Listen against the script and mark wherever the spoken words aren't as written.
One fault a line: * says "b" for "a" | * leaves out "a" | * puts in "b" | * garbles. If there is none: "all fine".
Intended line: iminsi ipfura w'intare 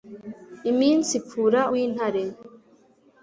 all fine